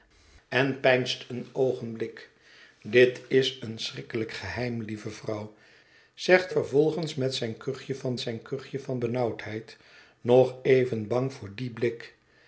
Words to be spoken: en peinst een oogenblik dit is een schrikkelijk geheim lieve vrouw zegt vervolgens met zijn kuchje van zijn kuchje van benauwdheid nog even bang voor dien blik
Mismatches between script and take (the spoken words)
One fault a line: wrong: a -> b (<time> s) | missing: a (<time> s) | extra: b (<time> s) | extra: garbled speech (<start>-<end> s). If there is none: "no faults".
no faults